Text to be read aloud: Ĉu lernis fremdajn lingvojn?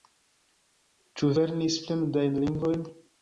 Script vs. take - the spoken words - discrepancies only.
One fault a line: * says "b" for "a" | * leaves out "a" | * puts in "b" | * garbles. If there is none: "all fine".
all fine